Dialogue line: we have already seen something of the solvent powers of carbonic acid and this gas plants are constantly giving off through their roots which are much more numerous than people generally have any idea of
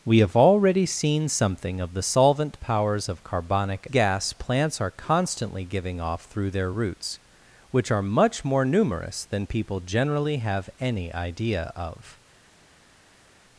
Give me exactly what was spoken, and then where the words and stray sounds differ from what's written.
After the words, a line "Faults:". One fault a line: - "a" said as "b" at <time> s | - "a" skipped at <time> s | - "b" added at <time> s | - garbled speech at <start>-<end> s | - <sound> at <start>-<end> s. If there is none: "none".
we have already seen something of the solvent powers of carbonic gas plants are constantly giving off through their roots which are much more numerous than people generally have any idea of
Faults:
- "acid and this" skipped at 3.9 s